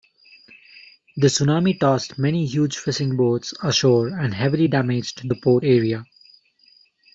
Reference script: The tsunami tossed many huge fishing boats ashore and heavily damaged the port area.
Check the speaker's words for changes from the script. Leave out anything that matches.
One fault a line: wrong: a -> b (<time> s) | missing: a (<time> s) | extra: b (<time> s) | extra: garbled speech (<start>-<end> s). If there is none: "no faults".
no faults